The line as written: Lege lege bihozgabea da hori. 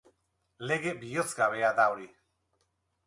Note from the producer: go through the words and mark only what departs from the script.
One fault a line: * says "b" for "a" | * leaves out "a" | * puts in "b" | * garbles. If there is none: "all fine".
* leaves out "lege"